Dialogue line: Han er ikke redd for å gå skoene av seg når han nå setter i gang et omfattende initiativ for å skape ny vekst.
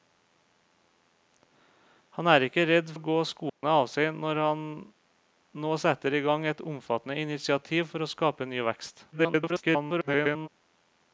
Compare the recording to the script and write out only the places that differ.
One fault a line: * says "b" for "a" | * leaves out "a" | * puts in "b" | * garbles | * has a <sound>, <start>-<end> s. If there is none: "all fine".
* leaves out "for"
* has a dropout, 3.5-3.6 s
* garbles